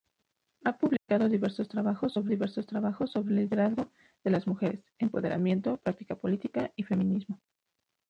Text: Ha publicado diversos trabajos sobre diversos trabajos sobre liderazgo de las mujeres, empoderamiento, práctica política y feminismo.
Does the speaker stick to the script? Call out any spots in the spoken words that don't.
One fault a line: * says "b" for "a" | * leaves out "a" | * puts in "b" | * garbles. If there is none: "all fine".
all fine